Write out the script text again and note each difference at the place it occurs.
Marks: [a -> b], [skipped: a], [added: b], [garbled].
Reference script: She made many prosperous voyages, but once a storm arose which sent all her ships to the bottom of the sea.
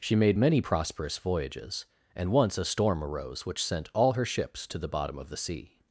She made many prosperous voyages, [but -> and] once a storm arose which sent all her ships to the bottom of the sea.